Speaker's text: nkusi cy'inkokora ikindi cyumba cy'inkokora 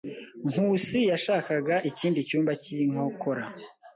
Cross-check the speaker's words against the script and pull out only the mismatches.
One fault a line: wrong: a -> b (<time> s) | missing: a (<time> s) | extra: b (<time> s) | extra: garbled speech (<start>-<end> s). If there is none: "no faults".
wrong: cy'inkokora -> yashakaga (1.1 s)